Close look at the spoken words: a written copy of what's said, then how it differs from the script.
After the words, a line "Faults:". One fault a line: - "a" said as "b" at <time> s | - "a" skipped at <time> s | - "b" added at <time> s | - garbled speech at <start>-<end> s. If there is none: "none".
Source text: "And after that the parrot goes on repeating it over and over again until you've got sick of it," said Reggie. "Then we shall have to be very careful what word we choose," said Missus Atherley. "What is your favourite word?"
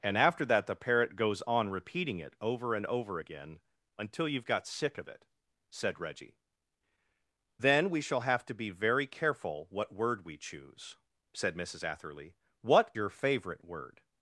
"And after that the parrot goes on repeating it over and over again until you've got sick of it," said Reggie. "Then we shall have to be very careful what word we choose," said Missus Atherley. "What your favourite word?"
Faults:
- "is" skipped at 12.9 s